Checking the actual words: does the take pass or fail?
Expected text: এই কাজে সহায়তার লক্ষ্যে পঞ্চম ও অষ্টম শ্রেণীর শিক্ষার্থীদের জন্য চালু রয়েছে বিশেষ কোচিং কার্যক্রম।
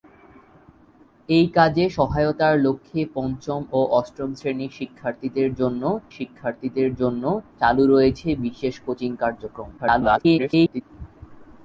fail